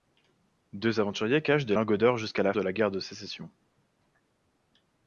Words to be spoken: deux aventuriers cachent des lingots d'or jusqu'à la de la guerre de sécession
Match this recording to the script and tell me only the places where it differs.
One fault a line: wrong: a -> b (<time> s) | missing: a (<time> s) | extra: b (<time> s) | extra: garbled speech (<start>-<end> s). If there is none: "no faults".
no faults